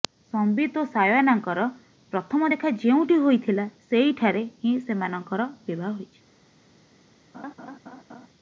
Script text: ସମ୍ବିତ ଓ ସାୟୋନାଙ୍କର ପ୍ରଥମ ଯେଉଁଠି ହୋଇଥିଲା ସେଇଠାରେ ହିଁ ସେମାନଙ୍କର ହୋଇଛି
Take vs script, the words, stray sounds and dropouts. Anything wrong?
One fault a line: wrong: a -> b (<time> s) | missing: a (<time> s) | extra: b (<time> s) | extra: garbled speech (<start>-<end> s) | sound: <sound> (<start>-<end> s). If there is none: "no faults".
extra: ଦେଖା (2.5 s)
extra: ବିବାହ (5.7 s)
sound: laugh (7.3-8.3 s)